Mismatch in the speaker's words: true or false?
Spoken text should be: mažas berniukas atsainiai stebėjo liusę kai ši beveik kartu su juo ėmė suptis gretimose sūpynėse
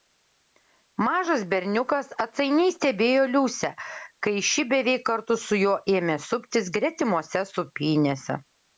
false